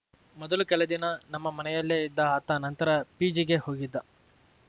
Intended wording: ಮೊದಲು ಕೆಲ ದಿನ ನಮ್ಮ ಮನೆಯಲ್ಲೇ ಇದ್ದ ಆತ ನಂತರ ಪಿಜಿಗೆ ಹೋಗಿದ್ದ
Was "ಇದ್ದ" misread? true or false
false